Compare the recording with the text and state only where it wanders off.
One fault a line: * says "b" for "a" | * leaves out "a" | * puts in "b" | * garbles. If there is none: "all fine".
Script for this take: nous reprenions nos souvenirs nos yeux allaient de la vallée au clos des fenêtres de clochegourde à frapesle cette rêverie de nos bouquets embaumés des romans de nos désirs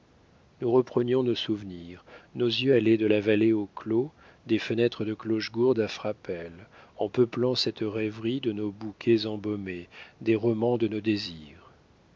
* puts in "en peuplant"